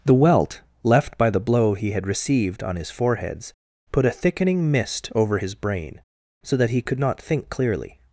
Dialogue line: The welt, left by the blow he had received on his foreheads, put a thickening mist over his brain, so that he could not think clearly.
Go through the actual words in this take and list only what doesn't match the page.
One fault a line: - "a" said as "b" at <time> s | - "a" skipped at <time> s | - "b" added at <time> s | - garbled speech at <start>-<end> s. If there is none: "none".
none